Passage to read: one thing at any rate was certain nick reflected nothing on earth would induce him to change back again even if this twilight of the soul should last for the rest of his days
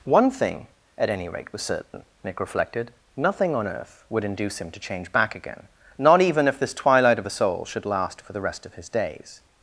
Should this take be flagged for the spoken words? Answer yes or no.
yes